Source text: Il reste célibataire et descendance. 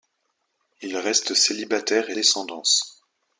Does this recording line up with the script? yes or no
yes